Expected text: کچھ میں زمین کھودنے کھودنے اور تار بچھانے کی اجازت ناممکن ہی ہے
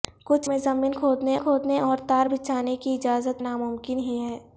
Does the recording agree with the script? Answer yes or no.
yes